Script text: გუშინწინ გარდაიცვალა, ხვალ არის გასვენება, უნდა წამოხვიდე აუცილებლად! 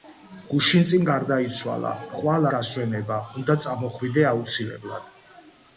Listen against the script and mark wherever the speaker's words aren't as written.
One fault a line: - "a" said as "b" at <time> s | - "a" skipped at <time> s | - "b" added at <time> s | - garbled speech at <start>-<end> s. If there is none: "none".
- "არის" skipped at 2.5 s